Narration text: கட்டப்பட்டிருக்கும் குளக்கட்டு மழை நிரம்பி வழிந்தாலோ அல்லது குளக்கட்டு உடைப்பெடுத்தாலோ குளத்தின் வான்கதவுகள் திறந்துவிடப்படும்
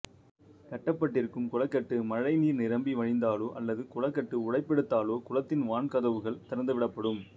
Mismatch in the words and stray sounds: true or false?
true